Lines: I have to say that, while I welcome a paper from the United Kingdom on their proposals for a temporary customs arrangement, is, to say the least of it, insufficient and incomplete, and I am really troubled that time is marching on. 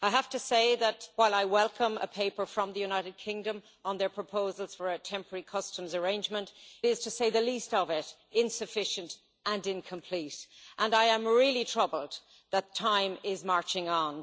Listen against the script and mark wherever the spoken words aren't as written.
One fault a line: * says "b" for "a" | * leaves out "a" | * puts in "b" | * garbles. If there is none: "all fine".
all fine